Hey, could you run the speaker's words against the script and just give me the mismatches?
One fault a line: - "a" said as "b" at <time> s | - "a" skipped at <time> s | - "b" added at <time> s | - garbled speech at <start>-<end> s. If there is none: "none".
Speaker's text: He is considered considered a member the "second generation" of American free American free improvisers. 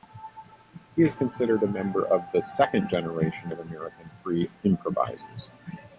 - "considered" skipped at 1.6 s
- "of" added at 2.1 s
- "American free" skipped at 4.5 s